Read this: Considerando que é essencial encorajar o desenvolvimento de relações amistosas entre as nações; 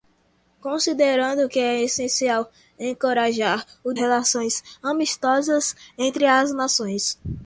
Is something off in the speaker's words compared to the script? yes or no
yes